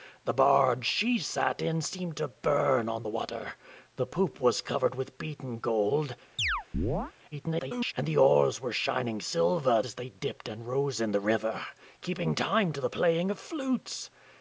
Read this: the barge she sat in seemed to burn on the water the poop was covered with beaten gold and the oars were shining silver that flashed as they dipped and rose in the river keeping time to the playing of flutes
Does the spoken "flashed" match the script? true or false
false